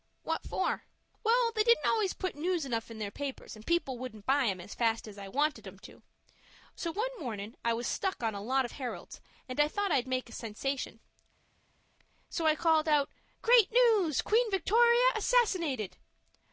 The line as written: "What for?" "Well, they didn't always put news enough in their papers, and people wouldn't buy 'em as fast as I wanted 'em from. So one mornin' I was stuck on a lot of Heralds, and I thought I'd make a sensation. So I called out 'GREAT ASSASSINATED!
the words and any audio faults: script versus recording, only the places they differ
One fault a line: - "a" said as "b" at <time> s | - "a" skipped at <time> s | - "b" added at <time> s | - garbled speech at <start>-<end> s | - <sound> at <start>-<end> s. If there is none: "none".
- "from" said as "to" at 5.8 s
- "NEWS QUEEN VICTORIA" added at 13.7 s